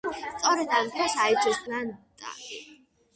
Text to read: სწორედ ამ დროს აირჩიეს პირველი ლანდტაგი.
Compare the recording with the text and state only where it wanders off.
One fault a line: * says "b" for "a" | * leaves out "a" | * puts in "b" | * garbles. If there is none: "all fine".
* leaves out "პირველი"